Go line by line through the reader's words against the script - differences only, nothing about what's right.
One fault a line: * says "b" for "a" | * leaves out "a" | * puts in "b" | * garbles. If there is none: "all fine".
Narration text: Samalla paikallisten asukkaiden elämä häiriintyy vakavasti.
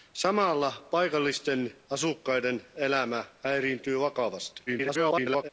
* garbles